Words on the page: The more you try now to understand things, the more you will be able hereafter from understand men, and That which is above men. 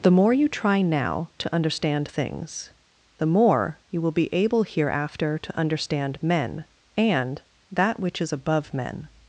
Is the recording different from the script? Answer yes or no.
yes